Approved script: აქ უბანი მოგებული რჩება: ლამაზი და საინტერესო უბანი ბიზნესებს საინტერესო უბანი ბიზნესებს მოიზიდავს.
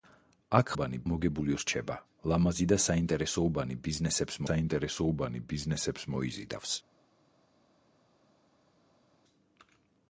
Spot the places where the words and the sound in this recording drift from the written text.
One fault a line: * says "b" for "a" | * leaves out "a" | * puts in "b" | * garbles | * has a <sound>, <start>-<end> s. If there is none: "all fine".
all fine